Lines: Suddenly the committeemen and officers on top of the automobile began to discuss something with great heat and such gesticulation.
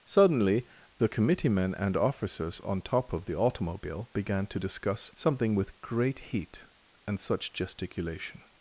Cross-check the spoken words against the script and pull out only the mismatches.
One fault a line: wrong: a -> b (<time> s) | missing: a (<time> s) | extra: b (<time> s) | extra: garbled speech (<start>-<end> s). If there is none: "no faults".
no faults